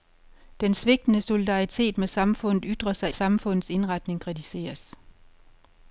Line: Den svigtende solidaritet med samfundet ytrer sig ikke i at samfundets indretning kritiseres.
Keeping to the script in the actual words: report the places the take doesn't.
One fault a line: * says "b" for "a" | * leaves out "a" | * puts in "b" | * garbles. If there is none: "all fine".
* leaves out "ikke i at"